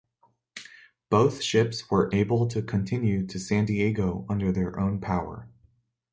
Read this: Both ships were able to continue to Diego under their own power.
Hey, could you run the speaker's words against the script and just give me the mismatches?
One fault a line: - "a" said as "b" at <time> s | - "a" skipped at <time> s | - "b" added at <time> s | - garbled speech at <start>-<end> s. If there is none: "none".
- "San" added at 3.4 s